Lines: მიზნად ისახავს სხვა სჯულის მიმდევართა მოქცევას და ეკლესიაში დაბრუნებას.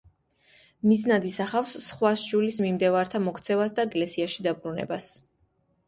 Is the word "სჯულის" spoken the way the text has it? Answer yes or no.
yes